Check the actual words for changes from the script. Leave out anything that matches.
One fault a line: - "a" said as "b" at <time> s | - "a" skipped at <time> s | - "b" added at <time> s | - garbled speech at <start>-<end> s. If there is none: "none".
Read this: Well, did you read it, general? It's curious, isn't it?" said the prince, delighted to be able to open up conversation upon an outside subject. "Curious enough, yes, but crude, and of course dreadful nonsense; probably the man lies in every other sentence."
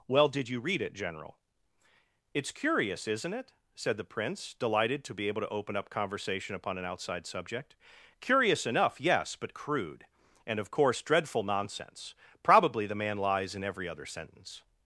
none